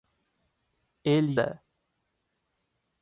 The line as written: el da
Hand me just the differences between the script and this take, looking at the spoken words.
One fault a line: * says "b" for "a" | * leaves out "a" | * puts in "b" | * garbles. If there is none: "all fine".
all fine